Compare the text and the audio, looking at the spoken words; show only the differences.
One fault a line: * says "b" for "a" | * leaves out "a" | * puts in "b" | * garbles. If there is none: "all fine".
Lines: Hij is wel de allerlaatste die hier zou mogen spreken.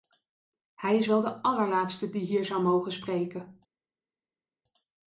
all fine